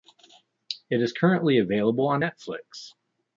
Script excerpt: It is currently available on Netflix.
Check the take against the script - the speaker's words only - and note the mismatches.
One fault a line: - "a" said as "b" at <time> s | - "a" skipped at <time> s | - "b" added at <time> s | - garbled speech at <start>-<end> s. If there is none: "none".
none